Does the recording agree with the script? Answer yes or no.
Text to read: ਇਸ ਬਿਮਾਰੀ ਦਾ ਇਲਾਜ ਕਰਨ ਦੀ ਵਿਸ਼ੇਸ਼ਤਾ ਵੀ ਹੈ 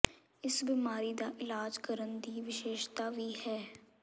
yes